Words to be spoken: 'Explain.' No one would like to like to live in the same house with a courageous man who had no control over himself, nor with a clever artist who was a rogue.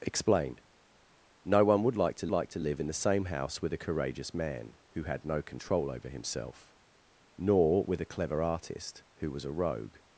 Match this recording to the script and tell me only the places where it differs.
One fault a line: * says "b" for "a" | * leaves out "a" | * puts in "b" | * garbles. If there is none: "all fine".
all fine